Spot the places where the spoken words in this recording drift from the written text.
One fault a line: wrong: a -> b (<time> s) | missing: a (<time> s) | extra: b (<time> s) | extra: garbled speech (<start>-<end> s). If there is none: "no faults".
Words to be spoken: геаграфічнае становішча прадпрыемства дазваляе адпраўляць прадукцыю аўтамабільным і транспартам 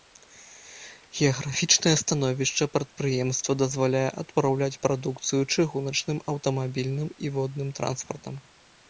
extra: чыгуначным (5.5 s)
extra: водным (7.4 s)